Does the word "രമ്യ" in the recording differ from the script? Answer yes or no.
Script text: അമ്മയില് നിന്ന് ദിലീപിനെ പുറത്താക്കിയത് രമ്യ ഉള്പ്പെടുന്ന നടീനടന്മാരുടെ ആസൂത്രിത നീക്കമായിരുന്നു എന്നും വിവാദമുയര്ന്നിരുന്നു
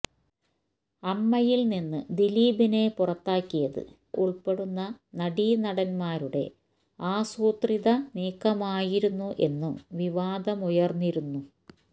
yes